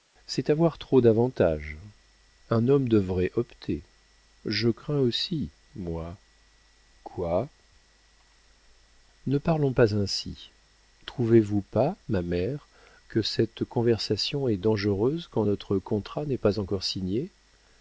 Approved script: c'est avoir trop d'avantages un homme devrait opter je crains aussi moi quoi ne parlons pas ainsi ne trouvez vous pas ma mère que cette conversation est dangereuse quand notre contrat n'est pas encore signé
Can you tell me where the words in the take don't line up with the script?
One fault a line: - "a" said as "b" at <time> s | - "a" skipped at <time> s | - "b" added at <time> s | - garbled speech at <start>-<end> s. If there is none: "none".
- "ne" skipped at 10.5 s